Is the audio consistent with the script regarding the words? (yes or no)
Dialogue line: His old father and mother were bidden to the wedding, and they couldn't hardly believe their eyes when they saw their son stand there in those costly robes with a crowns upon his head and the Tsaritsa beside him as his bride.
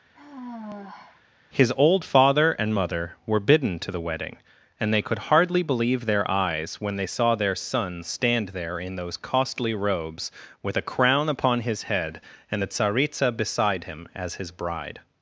no